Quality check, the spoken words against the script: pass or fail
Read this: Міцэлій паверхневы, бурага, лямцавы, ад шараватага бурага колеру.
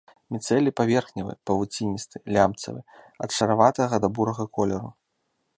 fail